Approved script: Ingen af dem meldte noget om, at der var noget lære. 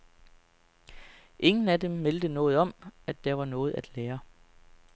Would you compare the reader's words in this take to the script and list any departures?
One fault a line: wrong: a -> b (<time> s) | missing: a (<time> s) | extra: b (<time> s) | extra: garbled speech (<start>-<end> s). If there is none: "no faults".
extra: at (3.7 s)